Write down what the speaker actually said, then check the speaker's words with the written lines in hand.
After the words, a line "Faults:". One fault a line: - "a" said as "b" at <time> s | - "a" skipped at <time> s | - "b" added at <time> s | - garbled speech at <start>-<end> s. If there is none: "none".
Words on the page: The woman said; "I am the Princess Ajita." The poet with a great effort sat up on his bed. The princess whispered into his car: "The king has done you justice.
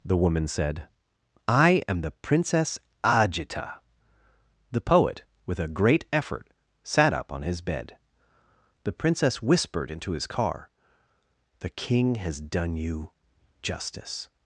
The woman said; "I am the Princess Ajita." The poet with a great effort sat up on his bed. The princess whispered into his car: "The king has done you justice.
Faults:
none